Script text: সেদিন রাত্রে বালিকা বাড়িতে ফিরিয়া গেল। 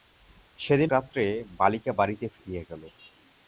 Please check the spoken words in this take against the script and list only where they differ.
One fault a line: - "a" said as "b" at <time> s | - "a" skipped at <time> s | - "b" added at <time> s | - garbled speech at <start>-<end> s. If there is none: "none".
none